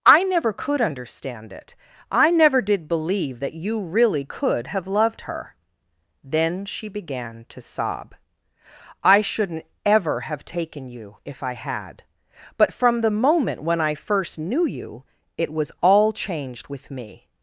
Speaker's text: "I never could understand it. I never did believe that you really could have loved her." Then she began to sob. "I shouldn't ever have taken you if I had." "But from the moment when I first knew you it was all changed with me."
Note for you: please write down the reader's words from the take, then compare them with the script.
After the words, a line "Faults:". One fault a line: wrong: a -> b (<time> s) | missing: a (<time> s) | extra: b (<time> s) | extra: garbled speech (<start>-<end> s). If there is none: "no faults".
"I never could understand it. I never did believe that you really could have loved her." Then she began to sob. "I shouldn't ever have taken you if I had." "But from the moment when I first knew you it was all changed with me."
Faults:
no faults